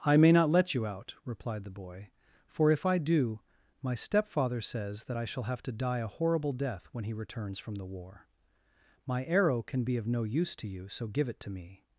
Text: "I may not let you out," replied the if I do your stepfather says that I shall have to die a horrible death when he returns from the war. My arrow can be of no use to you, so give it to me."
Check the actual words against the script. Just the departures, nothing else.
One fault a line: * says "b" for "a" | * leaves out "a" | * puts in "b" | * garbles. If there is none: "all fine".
* puts in "boy for"
* says "my" for "your"